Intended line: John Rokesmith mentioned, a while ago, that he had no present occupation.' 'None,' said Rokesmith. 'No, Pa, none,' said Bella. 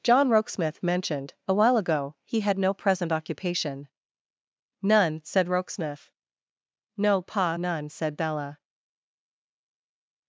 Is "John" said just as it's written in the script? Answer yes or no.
yes